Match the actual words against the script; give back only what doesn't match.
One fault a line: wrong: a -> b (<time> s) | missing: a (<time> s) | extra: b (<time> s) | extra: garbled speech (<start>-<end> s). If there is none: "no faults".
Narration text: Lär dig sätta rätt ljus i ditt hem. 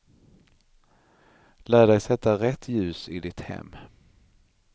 no faults